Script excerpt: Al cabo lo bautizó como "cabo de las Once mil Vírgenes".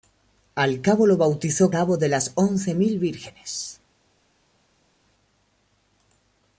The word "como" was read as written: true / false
false